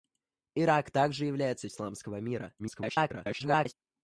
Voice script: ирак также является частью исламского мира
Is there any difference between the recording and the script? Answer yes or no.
yes